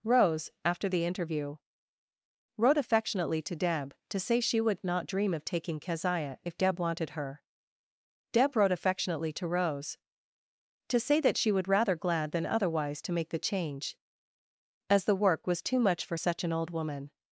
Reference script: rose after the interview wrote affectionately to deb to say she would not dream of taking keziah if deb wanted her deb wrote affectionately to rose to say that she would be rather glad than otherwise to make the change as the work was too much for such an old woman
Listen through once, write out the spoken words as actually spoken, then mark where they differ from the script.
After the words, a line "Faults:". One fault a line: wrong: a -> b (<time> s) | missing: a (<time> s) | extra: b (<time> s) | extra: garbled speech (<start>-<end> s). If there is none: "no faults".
rose after the interview wrote affectionately to deb to say she would not dream of taking keziah if deb wanted her deb wrote affectionately to rose to say that she would rather glad than otherwise to make the change as the work was too much for such an old woman
Faults:
missing: be (11.7 s)